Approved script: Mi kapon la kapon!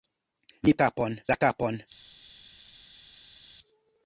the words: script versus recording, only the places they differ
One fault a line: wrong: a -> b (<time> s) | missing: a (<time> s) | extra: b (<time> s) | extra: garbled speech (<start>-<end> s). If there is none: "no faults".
no faults